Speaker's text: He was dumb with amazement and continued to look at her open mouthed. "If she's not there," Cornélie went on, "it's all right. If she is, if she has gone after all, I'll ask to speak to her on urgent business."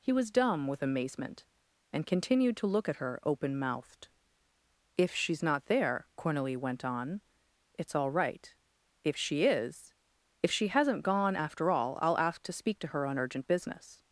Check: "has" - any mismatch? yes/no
yes